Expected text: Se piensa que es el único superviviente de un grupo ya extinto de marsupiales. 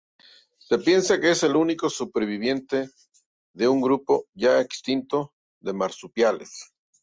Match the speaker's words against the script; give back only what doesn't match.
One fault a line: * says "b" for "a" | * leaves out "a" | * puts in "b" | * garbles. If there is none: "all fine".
all fine